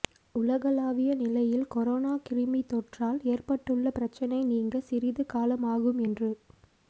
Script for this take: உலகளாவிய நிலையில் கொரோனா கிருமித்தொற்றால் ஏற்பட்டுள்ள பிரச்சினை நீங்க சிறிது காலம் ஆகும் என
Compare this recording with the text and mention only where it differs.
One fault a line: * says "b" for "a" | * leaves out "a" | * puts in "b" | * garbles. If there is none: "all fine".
* says "என்று" for "என"